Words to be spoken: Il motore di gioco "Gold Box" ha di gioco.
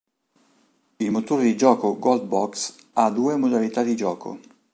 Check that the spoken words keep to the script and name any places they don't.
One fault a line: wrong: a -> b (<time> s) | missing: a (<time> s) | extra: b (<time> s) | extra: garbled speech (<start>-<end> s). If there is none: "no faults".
extra: due modalità (3.1 s)